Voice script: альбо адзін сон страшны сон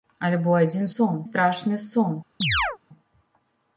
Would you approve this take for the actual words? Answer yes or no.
yes